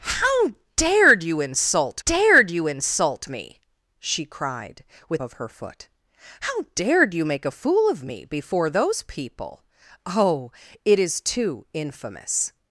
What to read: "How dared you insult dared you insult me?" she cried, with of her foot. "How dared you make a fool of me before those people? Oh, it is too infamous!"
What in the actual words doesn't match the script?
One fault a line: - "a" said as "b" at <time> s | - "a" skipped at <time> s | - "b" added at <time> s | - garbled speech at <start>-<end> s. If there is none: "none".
none